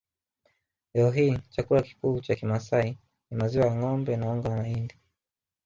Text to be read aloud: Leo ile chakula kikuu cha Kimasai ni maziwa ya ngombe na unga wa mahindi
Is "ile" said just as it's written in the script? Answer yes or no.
no